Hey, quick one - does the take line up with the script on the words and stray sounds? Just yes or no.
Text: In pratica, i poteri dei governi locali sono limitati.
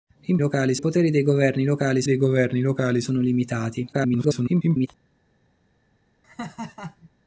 no